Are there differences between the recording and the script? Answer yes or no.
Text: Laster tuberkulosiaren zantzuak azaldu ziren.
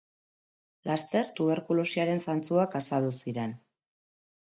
no